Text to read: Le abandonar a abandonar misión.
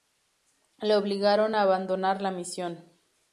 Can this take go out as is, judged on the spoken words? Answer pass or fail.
fail